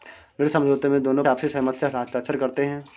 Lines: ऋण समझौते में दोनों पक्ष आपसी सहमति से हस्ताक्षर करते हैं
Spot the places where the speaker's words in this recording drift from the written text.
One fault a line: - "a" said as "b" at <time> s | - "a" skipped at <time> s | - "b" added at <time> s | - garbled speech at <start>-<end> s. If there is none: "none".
- "पक्ष" skipped at 1.2 s